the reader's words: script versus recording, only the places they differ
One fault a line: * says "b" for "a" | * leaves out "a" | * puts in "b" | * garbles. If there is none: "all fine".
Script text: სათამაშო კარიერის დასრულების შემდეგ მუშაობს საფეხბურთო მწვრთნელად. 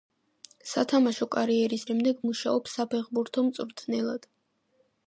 * leaves out "დასრულების"